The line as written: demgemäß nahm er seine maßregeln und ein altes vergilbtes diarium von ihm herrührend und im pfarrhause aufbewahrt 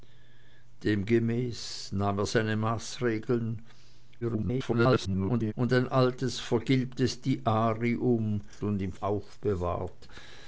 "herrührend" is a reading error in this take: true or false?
true